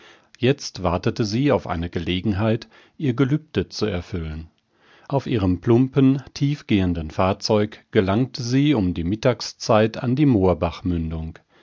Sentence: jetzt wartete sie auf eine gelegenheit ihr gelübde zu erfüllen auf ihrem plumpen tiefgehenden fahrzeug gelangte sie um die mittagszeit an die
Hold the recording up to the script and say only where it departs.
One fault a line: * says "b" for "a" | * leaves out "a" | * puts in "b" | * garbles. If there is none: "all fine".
all fine